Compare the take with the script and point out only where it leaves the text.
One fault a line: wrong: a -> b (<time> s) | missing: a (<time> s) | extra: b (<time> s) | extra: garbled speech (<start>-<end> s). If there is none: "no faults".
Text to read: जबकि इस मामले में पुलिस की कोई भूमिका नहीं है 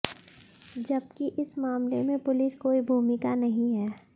missing: की (2.5 s)